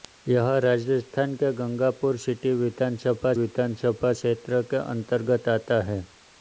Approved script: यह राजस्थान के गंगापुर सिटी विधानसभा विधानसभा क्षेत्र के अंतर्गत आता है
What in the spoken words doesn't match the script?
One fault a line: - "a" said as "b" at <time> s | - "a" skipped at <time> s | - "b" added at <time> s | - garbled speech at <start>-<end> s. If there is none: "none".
none